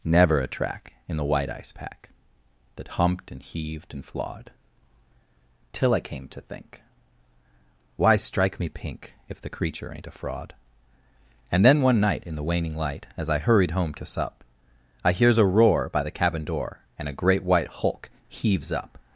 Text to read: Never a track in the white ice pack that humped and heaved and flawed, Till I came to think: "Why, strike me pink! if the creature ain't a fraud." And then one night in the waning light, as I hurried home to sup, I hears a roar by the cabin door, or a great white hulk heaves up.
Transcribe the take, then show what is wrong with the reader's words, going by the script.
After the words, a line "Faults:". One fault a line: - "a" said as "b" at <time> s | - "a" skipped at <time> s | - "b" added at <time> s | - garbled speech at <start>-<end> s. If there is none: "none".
Never a track in the white ice pack that humped and heaved and flawed, Till I came to think: "Why, strike me pink! if the creature ain't a fraud." And then one night in the waning light, as I hurried home to sup, I hears a roar by the cabin door, and a great white hulk heaves up.
Faults:
- "or" said as "and" at 17.0 s